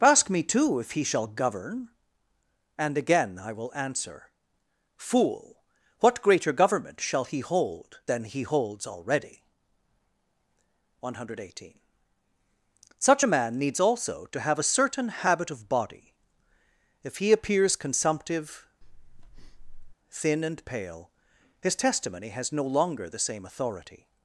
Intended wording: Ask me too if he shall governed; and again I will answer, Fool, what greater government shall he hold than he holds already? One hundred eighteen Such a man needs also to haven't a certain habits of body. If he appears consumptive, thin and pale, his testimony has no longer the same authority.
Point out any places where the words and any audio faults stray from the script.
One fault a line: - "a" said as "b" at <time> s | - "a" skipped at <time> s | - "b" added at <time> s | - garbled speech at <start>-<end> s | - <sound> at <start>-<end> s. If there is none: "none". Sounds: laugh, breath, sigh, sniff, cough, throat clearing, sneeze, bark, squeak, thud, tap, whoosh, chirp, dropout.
- "governed" said as "govern" at 1.3 s
- "haven't" said as "have" at 14.4 s
- "habits" said as "habit" at 15.1 s
- breath at 18.8-19.9 s